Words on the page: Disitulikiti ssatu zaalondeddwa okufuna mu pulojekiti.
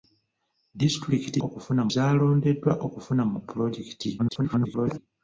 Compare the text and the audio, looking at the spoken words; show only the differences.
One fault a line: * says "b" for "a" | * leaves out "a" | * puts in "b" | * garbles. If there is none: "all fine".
* says "okufuna" for "ssatu"
* garbles